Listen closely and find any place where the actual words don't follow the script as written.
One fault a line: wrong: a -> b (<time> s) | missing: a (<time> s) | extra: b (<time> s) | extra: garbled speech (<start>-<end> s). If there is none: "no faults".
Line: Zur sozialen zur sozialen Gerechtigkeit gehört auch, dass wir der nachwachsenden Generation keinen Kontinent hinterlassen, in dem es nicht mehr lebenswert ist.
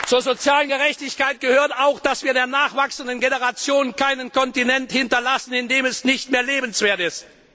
missing: zur sozialen (0.7 s)